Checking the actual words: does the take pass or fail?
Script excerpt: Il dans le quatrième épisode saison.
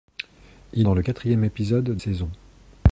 pass